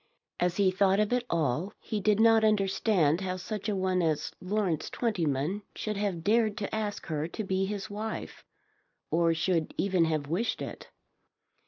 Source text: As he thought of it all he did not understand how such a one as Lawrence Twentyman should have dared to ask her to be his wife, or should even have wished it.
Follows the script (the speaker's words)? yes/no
yes